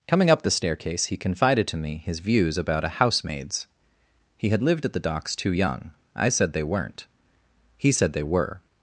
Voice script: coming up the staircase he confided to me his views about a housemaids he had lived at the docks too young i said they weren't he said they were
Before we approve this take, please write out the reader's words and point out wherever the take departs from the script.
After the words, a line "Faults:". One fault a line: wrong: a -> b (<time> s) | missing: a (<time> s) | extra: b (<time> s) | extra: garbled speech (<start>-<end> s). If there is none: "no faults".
coming up the staircase he confided to me his views about a housemaids he had lived at the docks too young i said they weren't he said they were
Faults:
no faults